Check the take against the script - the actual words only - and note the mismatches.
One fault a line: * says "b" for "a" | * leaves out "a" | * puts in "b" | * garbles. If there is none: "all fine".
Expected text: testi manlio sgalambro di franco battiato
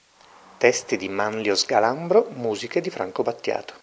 * puts in "di"
* puts in "musiche"